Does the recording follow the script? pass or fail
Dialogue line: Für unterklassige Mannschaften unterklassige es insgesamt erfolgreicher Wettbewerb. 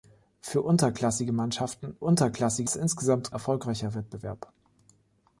pass